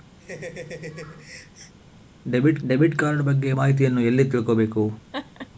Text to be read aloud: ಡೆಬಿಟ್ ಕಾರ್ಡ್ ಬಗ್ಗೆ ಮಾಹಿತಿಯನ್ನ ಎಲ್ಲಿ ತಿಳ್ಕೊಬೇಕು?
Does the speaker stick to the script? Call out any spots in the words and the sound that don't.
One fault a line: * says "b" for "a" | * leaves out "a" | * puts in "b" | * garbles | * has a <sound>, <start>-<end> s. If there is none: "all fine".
* has a laugh, 0.2-1.7 s
* puts in "ಡೆಬಿಟ್"
* has a laugh, 5.1-5.5 s